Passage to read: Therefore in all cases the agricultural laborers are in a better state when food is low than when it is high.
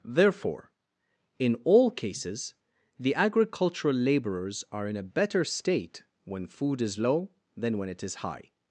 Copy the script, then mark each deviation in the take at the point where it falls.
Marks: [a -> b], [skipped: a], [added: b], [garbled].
Therefore in all cases the agricultural laborers are in a better state when food is low than when it is high.